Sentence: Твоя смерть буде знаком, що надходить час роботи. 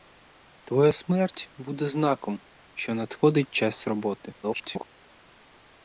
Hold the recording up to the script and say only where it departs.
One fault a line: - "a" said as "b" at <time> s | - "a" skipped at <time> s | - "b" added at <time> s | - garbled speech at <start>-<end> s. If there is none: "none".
- garbled speech at 4.4-4.9 s